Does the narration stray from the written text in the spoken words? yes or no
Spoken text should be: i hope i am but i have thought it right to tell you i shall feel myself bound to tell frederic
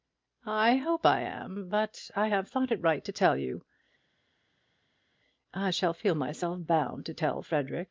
no